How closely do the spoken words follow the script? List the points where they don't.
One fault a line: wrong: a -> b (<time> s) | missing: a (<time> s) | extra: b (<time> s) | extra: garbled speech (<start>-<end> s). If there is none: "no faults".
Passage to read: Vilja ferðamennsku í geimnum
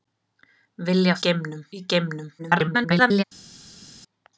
wrong: ferðamennsku -> geimnum (1.3 s)
extra: garbled speech (2.4-3.2 s)